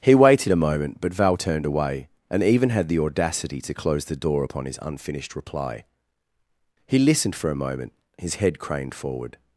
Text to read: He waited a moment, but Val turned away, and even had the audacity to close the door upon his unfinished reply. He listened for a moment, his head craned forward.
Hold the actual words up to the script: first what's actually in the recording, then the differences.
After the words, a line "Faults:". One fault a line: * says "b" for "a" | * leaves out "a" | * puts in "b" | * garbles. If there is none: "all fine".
He waited a moment, but Val turned away, and even had the audacity to close the door upon his unfinished reply. He listened for a moment, his head craned forward.
Faults:
all fine